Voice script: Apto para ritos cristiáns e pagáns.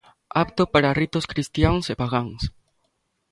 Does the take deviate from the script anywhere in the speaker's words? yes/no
no